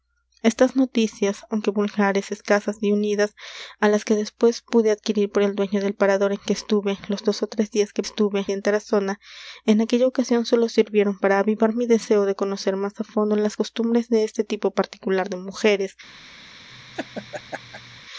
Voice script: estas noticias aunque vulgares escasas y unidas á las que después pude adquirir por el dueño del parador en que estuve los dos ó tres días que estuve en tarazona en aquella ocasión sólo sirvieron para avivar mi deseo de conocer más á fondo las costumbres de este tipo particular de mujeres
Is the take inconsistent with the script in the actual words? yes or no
no